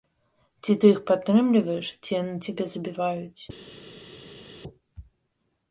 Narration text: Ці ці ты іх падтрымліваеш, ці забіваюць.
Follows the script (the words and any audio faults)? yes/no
no